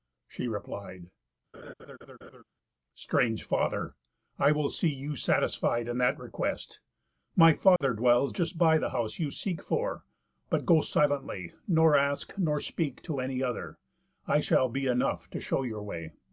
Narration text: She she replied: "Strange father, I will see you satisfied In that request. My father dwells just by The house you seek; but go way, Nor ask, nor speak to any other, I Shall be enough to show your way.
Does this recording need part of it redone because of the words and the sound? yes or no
yes